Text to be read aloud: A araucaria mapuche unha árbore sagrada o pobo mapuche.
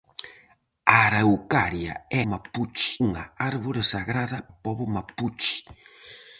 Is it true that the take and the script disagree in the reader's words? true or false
false